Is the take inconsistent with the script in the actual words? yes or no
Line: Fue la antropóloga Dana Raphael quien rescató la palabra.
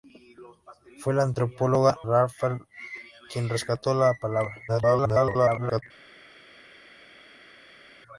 yes